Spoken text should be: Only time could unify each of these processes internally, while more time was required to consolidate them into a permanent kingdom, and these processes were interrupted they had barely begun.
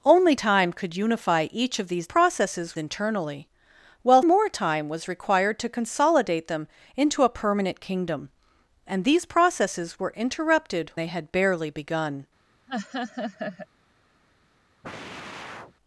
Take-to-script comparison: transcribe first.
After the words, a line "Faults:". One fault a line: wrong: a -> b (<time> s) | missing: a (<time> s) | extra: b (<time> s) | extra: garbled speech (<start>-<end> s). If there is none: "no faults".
Only time could unify each of these processes internally, while more time was required to consolidate them into a permanent kingdom, and these processes were interrupted they had barely begun.
Faults:
no faults